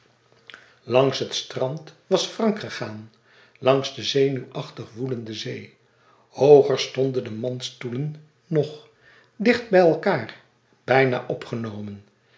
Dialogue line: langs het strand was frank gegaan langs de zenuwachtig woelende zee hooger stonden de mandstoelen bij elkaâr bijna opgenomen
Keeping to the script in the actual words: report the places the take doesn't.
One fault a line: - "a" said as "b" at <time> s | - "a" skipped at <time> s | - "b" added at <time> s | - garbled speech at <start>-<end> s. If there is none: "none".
- "nog dicht" added at 8.5 s